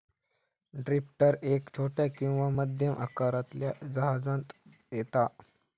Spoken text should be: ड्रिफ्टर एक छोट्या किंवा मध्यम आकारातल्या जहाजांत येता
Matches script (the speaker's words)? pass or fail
pass